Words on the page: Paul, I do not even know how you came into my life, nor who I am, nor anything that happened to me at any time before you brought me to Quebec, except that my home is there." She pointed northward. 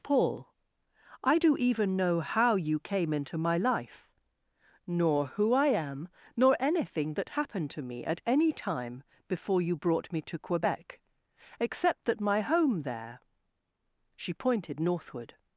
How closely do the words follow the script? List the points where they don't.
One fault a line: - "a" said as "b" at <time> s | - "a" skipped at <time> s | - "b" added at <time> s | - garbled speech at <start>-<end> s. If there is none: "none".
- "not" skipped at 1.6 s
- "is" skipped at 12.8 s